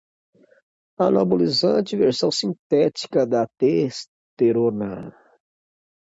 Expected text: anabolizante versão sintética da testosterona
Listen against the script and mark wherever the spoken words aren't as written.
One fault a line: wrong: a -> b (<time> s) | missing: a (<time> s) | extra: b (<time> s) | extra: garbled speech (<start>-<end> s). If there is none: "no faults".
no faults